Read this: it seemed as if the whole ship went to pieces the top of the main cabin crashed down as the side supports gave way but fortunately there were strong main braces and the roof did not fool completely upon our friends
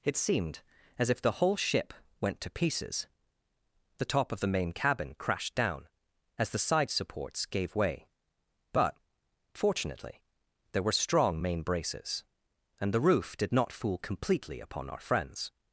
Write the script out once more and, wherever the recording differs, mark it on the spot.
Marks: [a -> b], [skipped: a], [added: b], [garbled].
it seemed as if the whole ship went to pieces the top of the main cabin crashed down as the side supports gave way but fortunately there were strong main braces and the roof did not fool completely upon our friends